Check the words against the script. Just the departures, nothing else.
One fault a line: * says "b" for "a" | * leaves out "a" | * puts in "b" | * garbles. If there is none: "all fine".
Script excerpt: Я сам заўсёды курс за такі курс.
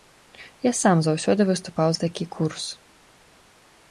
* says "выступаў" for "курс"